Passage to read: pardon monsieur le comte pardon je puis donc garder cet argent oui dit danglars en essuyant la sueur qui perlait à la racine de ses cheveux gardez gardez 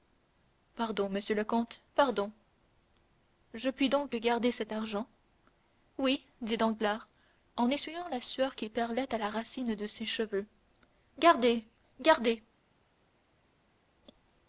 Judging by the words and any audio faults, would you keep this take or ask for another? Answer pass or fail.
pass